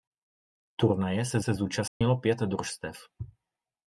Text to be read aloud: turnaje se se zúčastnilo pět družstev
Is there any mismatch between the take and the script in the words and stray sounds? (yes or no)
yes